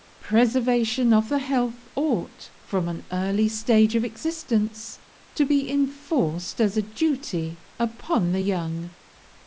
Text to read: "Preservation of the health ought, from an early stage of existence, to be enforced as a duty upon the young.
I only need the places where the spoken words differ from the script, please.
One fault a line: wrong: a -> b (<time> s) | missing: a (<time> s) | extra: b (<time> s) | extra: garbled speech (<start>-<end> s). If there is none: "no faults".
no faults